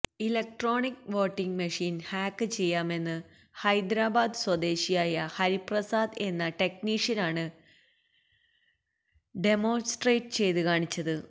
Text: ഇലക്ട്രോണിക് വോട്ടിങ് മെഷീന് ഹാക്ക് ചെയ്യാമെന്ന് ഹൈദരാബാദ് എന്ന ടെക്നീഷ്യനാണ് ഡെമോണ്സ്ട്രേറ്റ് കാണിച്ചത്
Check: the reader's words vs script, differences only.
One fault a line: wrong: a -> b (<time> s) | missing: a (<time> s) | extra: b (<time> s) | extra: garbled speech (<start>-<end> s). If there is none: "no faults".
extra: സ്വദേശിയായ ഹരിപ്രസാദ് (4.4 s)
extra: ചെയ്ത് (10.4 s)